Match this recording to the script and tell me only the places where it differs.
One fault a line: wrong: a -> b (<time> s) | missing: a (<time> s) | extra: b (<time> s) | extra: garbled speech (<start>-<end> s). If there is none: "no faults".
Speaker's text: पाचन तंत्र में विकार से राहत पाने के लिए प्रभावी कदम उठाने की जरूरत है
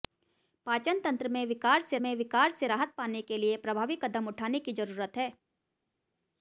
extra: में विकार से (2.0 s)